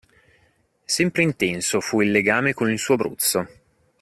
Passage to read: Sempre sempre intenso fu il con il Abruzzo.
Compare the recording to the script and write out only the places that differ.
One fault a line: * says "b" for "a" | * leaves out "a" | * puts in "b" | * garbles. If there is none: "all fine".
* leaves out "sempre"
* puts in "legame"
* puts in "suo"